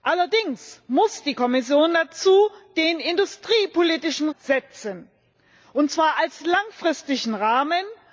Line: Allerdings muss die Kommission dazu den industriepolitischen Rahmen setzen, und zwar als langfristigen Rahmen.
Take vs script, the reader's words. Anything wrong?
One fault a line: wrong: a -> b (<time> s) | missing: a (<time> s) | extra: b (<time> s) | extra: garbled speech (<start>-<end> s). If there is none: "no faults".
missing: Rahmen (4.3 s)